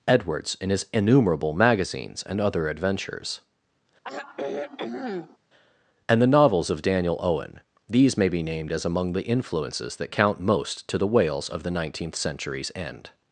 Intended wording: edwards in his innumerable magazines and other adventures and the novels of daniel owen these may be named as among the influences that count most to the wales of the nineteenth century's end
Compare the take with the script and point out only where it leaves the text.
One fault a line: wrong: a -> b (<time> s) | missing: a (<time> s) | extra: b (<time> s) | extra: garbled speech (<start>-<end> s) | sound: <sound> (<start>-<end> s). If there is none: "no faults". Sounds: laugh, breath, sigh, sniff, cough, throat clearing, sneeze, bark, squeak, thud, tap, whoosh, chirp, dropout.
sound: sigh (4.0-5.4 s)